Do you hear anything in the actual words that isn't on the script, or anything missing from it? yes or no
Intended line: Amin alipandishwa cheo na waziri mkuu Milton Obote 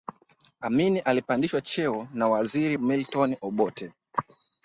yes